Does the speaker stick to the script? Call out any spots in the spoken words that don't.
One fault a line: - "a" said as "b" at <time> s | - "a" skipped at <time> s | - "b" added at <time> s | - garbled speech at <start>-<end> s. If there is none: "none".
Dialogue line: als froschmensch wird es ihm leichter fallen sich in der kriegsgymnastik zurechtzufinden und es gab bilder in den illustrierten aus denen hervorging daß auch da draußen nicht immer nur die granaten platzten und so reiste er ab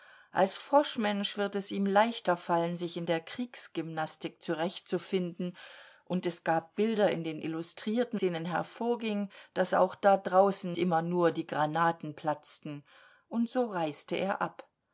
- "aus" skipped at 8.2 s
- "nicht" skipped at 10.8 s